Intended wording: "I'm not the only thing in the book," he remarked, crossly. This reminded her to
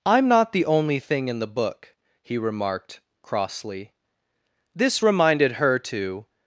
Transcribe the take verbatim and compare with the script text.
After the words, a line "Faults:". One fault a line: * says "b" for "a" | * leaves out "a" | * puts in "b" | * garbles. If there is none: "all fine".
"I'm not the only thing in the book," he remarked, crossly. This reminded her to
Faults:
all fine